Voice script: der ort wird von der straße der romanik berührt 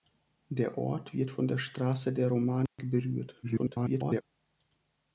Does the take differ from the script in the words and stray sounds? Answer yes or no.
yes